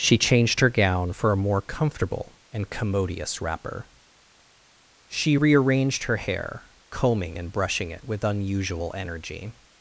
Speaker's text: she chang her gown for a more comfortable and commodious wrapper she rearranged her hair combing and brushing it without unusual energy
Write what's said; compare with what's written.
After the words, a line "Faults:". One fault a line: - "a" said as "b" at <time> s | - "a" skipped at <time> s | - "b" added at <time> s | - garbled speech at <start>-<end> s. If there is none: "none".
she changed her gown for a more comfortable and commodious wrapper she rearranged her hair combing and brushing it with unusual energy
Faults:
- "chang" said as "changed" at 0.2 s
- "without" said as "with" at 8.0 s